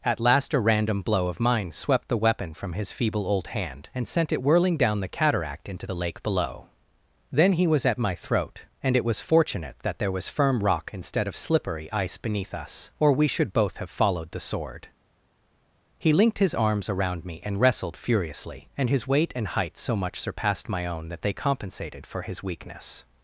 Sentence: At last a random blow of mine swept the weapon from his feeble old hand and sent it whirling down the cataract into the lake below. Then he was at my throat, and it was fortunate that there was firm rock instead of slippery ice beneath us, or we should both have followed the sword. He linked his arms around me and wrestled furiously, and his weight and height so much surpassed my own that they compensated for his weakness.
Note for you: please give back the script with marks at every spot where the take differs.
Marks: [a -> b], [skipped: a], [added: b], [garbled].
At last a random blow of mine swept the weapon from his feeble old hand and sent it whirling down the cataract into the lake below. Then he was at my throat, and it was fortunate that there was firm rock instead of slippery ice beneath us, or we should both have followed the sword. He linked his arms around me and wrestled furiously, and his weight and height so much surpassed my own that they compensated for his weakness.